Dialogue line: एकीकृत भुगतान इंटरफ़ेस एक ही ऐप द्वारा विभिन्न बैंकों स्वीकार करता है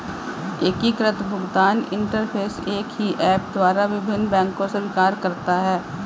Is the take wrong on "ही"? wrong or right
right